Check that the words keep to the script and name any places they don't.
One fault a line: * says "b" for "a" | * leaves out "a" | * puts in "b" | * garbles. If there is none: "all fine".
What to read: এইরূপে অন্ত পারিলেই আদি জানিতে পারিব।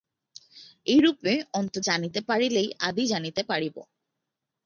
* puts in "জানিতে"